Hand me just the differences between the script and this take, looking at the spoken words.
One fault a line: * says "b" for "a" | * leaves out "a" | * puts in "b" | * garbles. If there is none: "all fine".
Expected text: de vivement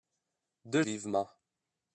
all fine